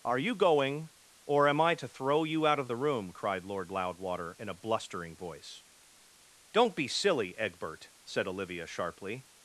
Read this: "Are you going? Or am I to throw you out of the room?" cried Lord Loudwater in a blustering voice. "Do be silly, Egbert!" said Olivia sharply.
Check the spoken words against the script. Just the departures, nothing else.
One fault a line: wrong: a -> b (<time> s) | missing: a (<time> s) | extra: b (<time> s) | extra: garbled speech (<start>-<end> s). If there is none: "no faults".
wrong: Do -> Don't (6.5 s)